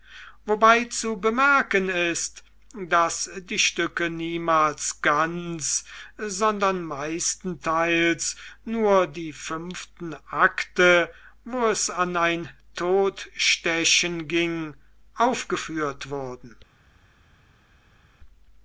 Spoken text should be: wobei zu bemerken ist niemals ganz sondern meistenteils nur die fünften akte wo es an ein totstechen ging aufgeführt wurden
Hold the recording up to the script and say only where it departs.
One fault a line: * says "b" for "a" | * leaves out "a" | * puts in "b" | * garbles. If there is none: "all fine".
* puts in "daß die stücke"